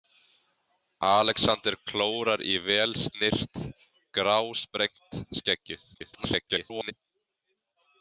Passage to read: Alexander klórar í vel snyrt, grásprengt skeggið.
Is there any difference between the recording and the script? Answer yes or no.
yes